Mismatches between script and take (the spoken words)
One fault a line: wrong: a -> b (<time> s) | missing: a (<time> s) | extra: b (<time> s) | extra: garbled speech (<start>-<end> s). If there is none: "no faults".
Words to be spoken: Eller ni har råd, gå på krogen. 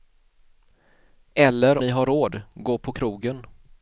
no faults